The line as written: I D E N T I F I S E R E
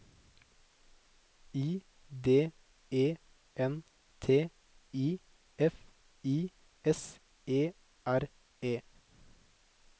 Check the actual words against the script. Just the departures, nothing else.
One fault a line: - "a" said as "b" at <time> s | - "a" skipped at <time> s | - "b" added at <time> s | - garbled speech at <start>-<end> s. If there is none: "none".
none